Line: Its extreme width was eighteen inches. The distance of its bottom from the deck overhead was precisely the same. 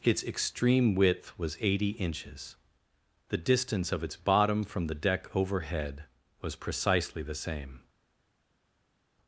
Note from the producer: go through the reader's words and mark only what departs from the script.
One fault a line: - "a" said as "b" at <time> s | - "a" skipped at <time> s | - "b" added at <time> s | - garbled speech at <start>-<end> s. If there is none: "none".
- "eighteen" said as "eighty" at 1.6 s